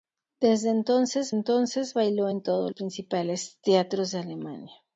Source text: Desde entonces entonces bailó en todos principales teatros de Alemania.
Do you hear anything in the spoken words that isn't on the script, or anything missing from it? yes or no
no